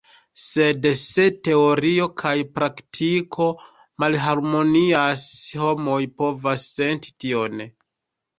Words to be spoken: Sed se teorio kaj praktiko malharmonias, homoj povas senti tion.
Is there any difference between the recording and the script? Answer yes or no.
no